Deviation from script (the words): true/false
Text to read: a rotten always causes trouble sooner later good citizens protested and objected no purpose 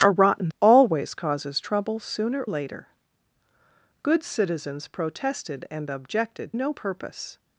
false